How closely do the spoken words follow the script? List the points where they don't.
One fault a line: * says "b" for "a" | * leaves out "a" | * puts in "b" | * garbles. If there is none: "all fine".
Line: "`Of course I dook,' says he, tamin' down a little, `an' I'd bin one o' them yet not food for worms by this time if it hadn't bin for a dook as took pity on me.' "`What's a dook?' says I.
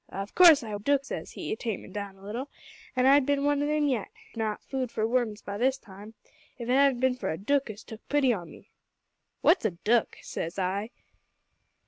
all fine